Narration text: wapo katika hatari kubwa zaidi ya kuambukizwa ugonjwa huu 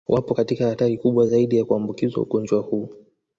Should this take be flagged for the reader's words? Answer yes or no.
no